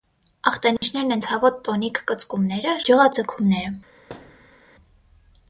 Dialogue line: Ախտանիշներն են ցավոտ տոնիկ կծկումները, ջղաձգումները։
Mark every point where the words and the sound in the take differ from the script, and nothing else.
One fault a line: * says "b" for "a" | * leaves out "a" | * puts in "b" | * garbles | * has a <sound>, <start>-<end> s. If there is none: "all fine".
* has a dropout, 0.8-0.8 s
* has a thud, 4.1-4.6 s